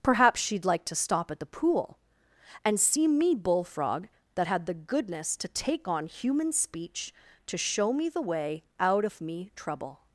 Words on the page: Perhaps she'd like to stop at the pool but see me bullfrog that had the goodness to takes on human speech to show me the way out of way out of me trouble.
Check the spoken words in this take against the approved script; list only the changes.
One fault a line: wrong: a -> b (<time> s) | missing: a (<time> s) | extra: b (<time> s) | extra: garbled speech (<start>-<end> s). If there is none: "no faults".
wrong: but -> and (2.6 s)
wrong: takes -> take (5.5 s)
missing: way out of (9.2 s)